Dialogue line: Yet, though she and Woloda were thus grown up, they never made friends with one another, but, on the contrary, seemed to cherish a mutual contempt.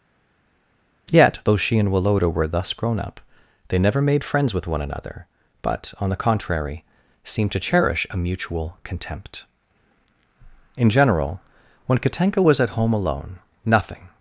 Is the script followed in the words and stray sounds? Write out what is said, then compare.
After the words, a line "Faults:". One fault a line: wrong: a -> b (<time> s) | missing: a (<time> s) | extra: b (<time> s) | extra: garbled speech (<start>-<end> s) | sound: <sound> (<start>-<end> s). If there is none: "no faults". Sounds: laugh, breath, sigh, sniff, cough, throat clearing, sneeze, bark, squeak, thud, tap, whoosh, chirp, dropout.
Yet, though she and Woloda were thus grown up, they never made friends with one another, but, on the contrary, seemed to cherish a mutual contempt. In general, when Katenka was at home alone, nothing
Faults:
extra: In general when Katenka was at home alone nothing (10.7 s)